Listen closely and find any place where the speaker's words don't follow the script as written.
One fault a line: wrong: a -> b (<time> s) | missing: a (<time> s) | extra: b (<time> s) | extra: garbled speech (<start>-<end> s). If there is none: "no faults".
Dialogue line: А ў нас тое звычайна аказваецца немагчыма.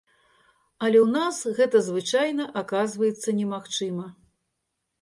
wrong: А -> Але (0.9 s)
wrong: тое -> гэта (1.6 s)